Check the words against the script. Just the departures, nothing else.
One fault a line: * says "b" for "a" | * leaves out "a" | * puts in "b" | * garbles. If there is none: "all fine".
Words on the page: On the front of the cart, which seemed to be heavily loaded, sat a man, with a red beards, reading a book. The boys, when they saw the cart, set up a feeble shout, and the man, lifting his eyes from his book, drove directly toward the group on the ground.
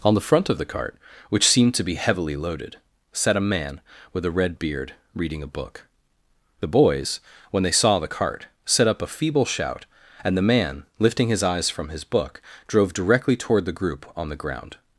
* says "beard" for "beards"